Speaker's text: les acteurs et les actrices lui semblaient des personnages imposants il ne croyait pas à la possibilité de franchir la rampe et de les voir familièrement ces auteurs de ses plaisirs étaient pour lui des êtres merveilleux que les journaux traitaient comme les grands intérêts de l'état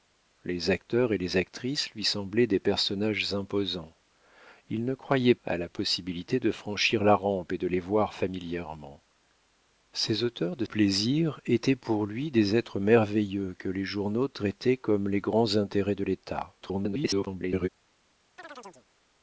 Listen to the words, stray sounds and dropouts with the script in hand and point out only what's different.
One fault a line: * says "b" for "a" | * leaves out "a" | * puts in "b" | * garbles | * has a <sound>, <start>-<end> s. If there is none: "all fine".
* leaves out "pas"
* leaves out "ses"
* garbles
* has a chirp, 18.4-18.9 s